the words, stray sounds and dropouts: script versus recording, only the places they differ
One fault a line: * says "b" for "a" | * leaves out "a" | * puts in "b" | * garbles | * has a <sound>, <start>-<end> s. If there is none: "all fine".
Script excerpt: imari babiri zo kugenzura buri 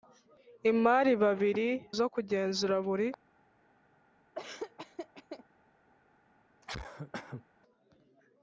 * has a laugh, 4.3-5.4 s
* has a cough, 6.6-7.4 s